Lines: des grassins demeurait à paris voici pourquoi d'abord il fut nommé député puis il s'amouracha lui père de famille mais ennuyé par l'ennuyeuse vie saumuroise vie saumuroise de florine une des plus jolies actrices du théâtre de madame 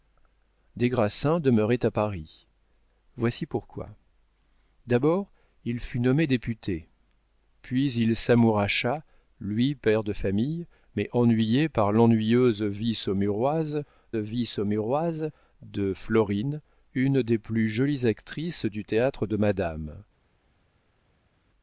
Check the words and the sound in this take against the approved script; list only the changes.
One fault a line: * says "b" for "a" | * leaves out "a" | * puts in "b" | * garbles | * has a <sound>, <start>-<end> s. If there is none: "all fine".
all fine